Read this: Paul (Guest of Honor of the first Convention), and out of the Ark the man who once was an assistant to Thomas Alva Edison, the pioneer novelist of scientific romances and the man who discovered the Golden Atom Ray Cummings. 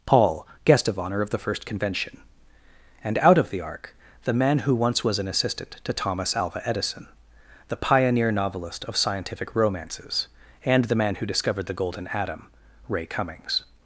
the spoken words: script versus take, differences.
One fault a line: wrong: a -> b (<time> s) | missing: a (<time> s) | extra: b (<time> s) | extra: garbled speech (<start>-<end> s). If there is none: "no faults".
no faults